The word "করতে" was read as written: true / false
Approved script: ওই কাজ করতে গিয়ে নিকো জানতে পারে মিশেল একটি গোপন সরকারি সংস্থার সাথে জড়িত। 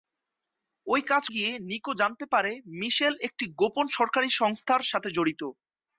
false